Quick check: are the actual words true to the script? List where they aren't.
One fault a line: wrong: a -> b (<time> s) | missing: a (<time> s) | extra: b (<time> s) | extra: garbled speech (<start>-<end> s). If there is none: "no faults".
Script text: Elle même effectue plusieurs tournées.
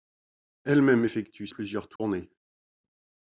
no faults